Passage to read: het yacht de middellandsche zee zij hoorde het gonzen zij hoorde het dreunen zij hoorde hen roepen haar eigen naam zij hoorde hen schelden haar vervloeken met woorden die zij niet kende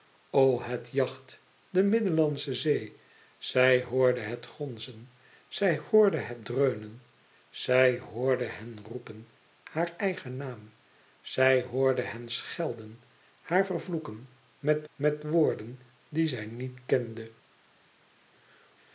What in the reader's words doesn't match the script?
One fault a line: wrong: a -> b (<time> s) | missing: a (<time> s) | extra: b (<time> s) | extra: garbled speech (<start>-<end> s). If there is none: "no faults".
extra: met (14.9 s)